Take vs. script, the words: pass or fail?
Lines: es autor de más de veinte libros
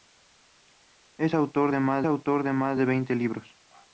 fail